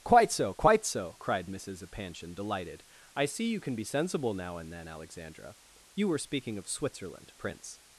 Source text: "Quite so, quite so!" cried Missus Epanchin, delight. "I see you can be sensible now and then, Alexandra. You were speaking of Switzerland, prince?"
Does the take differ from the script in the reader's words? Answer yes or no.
yes